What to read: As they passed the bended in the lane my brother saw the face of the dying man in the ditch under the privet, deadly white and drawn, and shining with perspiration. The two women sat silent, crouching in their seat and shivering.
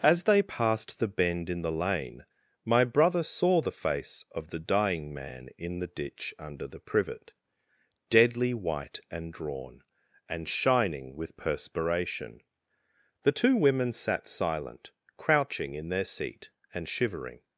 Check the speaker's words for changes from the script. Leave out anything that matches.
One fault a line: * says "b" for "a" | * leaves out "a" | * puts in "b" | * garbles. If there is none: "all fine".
* says "bend" for "bended"